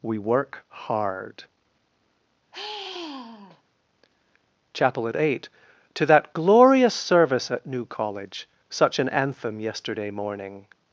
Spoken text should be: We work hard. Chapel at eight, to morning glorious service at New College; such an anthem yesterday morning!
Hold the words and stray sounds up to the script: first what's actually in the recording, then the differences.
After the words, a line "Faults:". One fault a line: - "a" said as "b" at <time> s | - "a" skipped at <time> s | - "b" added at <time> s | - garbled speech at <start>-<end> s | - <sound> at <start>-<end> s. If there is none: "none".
We work hard. Chapel at eight, to that glorious service at New College; such an anthem yesterday morning!
Faults:
- sigh at 2.5-3.6 s
- "morning" said as "that" at 6.1 s